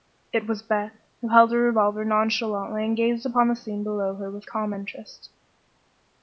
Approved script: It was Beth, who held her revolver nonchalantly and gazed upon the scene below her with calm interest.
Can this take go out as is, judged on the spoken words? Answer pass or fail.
pass